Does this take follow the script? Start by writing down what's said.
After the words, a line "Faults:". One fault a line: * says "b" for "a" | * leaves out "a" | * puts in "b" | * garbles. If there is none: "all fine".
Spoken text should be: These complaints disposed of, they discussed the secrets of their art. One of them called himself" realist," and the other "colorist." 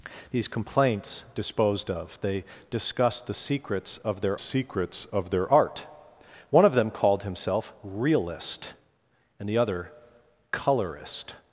These complaints disposed of, they discussed the secrets of their secrets of their art. One of them called himself" realist," and the other "colorist."
Faults:
* puts in "secrets of their"